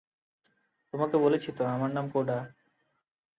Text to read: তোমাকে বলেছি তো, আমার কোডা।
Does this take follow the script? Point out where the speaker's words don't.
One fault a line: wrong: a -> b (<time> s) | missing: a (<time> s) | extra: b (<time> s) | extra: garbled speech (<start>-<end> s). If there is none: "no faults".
extra: নাম (1.9 s)